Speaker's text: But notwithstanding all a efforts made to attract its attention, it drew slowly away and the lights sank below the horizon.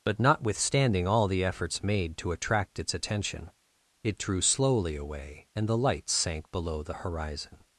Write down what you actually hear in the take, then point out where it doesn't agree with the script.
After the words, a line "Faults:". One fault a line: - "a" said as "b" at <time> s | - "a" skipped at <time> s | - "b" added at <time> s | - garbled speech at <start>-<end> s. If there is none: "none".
But notwithstanding all the efforts made to attract its attention, it drew slowly away and the lights sank below the horizon.
Faults:
- "a" said as "the" at 1.3 s